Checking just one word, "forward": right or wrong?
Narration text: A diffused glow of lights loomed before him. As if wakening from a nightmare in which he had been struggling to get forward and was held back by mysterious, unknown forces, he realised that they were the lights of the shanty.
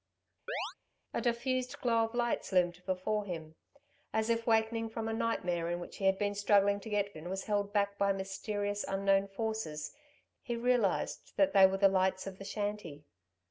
wrong